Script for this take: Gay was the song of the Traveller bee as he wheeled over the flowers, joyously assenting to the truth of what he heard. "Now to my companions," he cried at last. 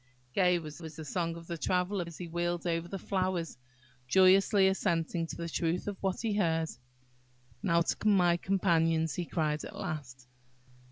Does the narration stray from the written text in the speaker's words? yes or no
yes